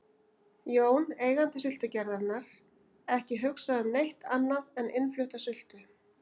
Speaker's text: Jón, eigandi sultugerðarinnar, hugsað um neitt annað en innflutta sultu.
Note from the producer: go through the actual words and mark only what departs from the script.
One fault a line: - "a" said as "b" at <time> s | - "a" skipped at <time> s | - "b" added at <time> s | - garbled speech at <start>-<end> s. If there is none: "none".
- "ekki" added at 3.2 s